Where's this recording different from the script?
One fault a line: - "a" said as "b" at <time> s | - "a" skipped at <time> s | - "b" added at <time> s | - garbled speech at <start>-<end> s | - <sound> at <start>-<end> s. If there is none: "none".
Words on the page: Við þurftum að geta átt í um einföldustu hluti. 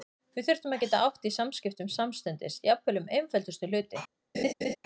- "samskiptum samstundis jafnvel" added at 1.3 s
- laugh at 4.3-4.8 s